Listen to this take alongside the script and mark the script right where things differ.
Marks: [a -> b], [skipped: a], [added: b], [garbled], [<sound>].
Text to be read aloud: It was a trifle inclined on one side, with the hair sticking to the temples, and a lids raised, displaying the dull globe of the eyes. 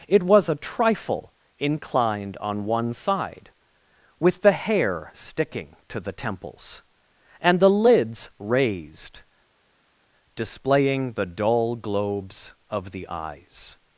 It was a trifle inclined on one side, with the hair sticking to the temples, and [a -> the] lids raised, displaying the dull [globe -> globes] of the eyes.